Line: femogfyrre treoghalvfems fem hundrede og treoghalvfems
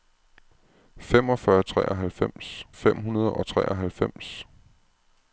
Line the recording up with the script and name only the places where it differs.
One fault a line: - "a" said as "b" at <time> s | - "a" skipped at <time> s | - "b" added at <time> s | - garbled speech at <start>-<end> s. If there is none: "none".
none